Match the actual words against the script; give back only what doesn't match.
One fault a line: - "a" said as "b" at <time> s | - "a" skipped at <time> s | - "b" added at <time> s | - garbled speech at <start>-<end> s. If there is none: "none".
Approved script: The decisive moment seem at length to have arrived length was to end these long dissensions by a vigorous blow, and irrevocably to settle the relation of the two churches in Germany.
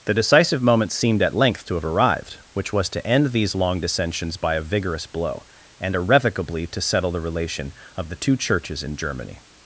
- "seem" said as "seemed" at 0.9 s
- "length" said as "which" at 2.5 s